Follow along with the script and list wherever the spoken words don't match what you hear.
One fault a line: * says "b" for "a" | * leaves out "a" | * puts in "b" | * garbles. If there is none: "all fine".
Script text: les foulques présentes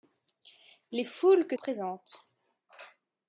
all fine